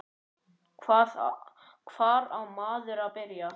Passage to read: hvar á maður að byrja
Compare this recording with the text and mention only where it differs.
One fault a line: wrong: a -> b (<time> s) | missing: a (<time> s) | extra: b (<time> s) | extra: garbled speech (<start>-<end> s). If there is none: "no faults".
no faults